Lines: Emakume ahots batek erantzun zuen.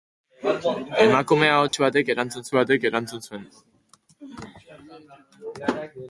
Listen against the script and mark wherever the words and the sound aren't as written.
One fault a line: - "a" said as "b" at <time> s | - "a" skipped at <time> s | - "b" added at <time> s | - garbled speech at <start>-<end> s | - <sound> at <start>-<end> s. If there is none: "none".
- dropout at 1.7-1.7 s
- "batek erantzun" added at 2.6 s